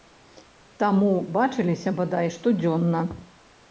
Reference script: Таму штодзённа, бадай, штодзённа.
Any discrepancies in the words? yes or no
yes